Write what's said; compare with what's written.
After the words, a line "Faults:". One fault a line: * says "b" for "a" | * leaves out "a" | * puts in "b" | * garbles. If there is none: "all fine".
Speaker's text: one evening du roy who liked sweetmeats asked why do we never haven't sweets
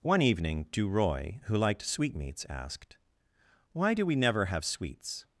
one evening du roy who liked sweetmeats asked why do we never have sweets
Faults:
* says "have" for "haven't"